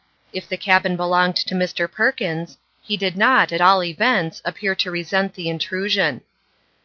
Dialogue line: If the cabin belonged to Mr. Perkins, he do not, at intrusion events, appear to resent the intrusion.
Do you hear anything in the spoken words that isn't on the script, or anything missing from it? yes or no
yes